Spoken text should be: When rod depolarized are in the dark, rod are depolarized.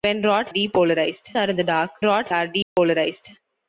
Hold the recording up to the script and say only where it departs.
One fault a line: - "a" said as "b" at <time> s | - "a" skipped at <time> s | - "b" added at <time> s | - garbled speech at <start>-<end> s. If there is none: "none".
none